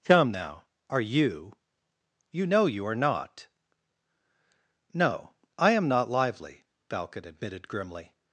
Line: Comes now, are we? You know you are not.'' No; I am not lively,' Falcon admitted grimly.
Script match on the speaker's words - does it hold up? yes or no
no